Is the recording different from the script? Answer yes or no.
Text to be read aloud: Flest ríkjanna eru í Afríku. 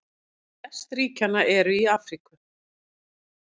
no